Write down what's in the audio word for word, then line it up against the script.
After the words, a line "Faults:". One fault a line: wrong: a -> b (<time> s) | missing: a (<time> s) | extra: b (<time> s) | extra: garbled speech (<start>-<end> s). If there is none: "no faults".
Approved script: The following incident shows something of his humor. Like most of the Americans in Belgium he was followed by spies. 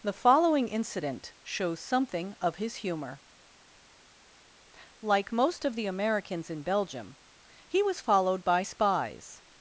The following incident shows something of his humor. Like most of the Americans in Belgium he was followed by spies.
Faults:
no faults